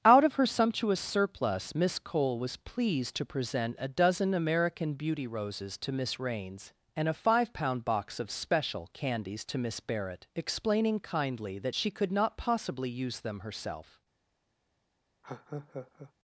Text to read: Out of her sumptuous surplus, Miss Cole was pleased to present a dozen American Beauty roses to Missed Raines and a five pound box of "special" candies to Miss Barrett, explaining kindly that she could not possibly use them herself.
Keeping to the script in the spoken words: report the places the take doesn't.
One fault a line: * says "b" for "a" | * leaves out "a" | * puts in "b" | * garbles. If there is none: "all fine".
* says "Miss" for "Missed"